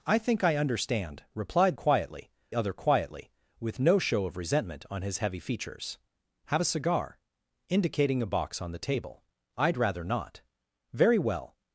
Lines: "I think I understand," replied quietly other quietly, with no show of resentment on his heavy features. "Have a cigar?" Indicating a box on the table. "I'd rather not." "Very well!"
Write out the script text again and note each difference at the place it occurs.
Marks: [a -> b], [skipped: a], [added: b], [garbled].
"I think I understand," replied quietly other quietly, with no show of resentment on his heavy features. "Have a cigar?" Indicating a box on the table. "I'd rather not." "Very well!"